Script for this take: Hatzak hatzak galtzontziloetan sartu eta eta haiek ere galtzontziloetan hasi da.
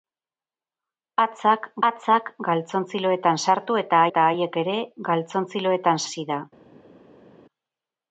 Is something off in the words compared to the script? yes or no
no